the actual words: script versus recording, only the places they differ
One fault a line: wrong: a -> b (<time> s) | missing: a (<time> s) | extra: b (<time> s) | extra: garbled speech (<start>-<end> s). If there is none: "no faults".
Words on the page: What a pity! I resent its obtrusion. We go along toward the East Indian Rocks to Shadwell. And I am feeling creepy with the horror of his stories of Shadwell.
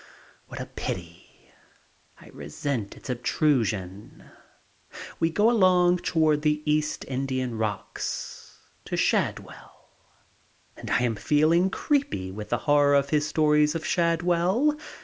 no faults